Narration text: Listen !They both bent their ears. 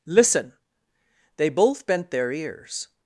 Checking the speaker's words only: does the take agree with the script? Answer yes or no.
yes